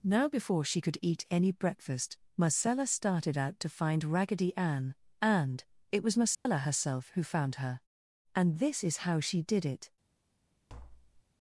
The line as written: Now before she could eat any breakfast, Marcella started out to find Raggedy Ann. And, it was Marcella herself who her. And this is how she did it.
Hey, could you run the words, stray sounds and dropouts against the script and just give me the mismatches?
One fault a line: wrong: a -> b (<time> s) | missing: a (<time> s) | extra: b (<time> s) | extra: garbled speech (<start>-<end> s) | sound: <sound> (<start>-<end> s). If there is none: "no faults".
sound: dropout (6.3-6.5 s)
extra: found (7.2 s)
sound: tap (10.7-11.2 s)